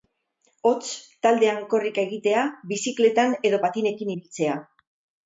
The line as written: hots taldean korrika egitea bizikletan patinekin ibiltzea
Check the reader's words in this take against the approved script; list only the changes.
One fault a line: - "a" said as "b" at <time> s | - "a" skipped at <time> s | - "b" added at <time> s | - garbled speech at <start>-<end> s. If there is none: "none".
- "edo" added at 3.5 s